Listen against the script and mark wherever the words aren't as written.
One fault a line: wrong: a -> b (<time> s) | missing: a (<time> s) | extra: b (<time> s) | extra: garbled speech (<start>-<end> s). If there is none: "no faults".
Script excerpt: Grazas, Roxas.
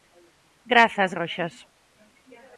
no faults